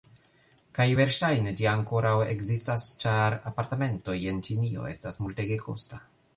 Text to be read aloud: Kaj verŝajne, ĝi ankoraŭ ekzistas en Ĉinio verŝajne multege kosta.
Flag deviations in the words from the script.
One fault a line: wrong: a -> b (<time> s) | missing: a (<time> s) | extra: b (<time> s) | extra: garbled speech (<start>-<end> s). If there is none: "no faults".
extra: ĉar apartamentoj (3.1 s)
wrong: verŝajne -> estas (5.0 s)